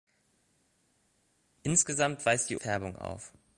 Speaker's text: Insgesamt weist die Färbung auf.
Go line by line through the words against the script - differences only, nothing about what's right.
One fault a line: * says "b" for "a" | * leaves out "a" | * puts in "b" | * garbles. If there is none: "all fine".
all fine